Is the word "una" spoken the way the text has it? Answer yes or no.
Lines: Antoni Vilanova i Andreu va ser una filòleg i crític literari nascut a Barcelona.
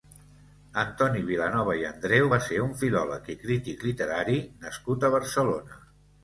no